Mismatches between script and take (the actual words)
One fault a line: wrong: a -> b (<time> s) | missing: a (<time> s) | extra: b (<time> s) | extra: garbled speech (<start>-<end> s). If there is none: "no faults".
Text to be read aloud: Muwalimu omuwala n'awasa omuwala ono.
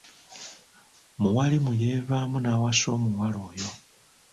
wrong: omuwala -> yeevaamu (1.8 s)
wrong: ono -> oyo (3.5 s)